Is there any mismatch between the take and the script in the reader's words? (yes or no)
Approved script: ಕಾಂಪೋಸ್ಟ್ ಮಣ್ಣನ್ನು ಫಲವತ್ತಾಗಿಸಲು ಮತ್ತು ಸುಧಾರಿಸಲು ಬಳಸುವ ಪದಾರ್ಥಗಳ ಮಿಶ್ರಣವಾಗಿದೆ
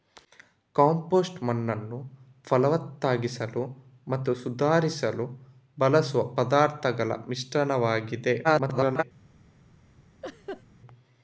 yes